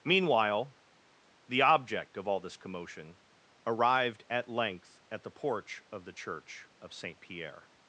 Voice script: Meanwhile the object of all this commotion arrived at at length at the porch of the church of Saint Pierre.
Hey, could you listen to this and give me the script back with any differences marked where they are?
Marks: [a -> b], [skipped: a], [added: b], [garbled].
Meanwhile the object of all this commotion arrived at [skipped: at] length at the porch of the church of Saint Pierre.